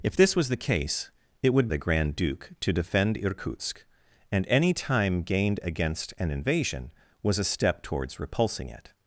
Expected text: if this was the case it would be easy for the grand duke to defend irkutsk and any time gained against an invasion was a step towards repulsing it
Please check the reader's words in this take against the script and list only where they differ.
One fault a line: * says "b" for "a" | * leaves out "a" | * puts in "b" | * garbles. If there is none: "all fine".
* leaves out "be easy for"